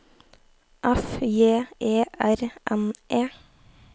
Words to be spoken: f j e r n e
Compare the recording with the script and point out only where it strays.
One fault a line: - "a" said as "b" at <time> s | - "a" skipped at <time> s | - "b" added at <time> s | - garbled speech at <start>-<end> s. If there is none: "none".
none